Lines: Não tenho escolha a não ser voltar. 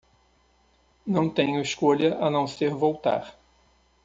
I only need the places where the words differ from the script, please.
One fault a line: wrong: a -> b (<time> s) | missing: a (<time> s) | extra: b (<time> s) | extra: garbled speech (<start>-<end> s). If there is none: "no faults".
no faults